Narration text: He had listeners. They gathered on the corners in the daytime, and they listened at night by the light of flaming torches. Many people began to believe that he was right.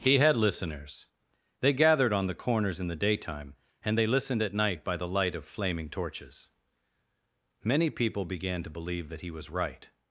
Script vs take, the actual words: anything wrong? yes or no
no